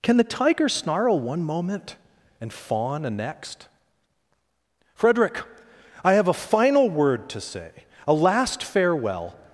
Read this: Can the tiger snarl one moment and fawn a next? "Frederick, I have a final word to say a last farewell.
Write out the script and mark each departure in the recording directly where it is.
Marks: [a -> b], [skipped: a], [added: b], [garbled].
Can the tiger snarl one moment and fawn a next? "Frederick, I have a final word to say a last farewell.